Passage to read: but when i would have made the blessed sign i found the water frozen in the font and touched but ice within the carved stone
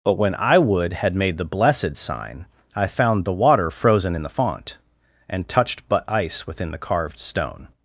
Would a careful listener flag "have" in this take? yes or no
yes